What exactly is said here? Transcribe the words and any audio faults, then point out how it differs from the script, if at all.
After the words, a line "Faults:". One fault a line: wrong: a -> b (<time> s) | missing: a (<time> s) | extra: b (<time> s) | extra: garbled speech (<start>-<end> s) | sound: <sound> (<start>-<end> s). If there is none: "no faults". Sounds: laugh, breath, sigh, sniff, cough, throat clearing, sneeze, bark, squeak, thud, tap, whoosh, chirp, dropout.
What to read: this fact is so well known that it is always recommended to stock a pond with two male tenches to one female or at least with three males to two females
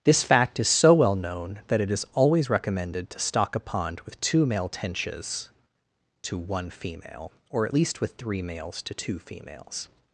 this fact is so well known that it is always recommended to stock a pond with two male tenches to one female or at least with three males to two females
Faults:
no faults